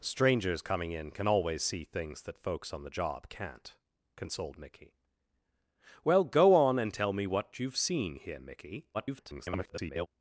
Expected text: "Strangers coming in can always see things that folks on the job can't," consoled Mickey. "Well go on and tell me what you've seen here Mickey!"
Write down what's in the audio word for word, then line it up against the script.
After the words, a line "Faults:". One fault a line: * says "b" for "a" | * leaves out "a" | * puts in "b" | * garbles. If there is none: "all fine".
"Strangers coming in can always see things that folks on the job can't," consoled Mickey. "Well go on and tell me what you've seen here Mickey!" [garbled]
Faults:
* garbles